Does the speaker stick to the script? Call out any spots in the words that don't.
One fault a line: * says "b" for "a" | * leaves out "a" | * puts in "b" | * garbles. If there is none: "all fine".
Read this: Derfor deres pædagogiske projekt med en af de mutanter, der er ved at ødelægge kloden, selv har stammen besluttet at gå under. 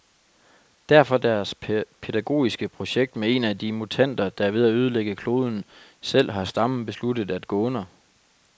all fine